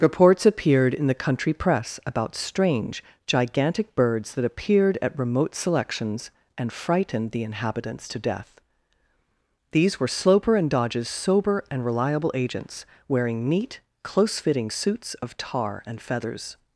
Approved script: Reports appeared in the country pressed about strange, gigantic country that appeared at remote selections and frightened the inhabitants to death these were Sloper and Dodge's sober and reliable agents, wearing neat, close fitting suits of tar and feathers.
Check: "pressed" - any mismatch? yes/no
yes